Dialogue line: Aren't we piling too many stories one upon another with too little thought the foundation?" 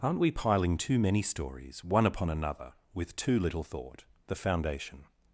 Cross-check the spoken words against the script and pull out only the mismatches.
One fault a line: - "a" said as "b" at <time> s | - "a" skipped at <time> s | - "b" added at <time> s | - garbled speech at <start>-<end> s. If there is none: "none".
none